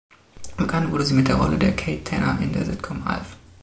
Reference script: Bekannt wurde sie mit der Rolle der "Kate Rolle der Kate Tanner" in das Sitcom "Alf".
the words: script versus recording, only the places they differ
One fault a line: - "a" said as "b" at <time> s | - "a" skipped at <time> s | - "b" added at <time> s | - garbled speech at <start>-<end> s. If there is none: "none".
- "Rolle der Kate" skipped at 2.0 s
- "das" said as "der" at 2.5 s